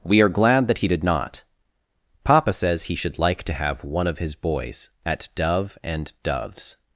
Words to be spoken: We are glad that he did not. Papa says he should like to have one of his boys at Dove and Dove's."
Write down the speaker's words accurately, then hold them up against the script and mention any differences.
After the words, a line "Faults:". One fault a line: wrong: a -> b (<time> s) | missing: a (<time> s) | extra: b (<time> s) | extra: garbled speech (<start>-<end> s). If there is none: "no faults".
We are glad that he did not. Papa says he should like to have one of his boys at Dove and Dove's."
Faults:
no faults